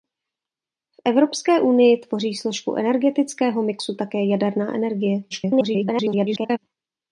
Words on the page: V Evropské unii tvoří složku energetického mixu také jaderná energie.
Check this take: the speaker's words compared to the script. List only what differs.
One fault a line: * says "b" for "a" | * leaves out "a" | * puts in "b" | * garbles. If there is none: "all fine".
* garbles